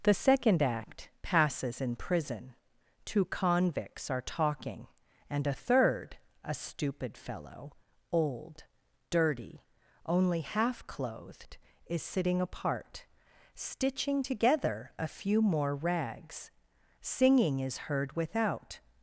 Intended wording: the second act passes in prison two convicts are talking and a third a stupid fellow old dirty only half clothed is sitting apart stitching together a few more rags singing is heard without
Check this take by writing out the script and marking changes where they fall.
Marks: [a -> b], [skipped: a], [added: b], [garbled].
the second act passes in prison two convicts are talking and a third a stupid fellow old dirty only half clothed is sitting apart stitching together a few more rags singing is heard without